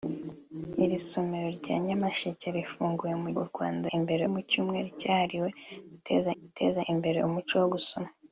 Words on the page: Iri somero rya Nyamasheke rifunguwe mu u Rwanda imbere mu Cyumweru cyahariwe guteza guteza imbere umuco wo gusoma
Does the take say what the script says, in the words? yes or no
yes